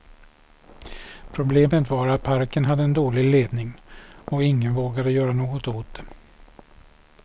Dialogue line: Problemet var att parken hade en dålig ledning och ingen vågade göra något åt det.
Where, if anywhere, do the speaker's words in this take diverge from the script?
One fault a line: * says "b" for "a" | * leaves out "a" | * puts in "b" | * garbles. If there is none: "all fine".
all fine